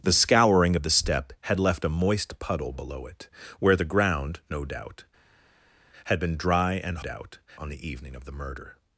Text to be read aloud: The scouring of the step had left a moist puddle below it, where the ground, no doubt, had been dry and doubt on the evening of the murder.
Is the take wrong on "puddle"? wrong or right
right